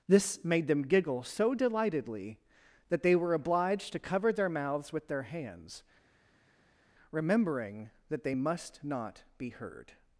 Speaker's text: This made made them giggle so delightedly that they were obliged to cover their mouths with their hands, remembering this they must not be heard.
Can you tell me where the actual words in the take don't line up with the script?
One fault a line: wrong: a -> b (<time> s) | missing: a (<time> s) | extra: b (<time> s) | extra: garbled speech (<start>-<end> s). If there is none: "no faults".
missing: made (0.7 s)
wrong: this -> that (8.1 s)